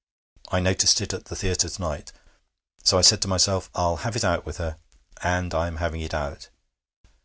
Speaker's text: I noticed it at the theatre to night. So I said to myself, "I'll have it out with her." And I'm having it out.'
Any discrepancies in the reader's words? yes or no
no